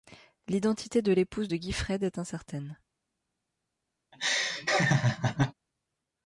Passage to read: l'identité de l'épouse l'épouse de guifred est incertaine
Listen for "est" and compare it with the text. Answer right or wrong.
right